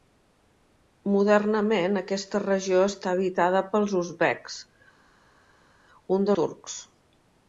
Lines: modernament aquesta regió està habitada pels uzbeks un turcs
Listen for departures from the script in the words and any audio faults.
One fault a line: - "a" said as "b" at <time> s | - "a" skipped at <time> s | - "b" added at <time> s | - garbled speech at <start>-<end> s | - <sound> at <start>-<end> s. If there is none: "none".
none